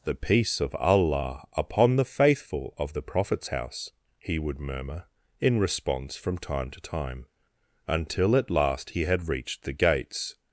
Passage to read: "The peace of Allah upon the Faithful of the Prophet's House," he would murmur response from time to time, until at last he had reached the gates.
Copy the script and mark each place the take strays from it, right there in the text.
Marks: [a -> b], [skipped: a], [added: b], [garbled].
"The peace of Allah upon the Faithful of the Prophet's House," he would murmur [added: in] response from time to time, until at last he had reached the gates.